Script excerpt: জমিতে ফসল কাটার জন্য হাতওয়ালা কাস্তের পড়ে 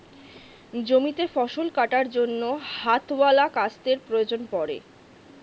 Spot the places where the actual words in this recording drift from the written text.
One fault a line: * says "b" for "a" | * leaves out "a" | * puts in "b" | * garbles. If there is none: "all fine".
* puts in "প্রয়োজন"